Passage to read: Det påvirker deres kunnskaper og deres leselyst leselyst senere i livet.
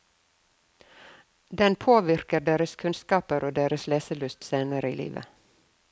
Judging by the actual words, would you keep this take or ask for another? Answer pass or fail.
fail